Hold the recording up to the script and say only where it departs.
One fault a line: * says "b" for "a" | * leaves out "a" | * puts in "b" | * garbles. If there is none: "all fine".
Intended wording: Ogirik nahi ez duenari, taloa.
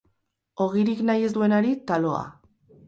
all fine